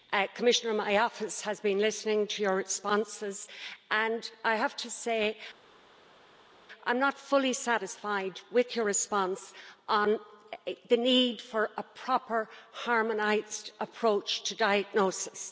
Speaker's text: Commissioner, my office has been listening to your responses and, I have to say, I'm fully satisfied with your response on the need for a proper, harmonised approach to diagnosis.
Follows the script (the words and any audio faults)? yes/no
no